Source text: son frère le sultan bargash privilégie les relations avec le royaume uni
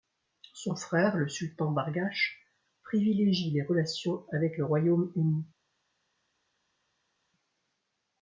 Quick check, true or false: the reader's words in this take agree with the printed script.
true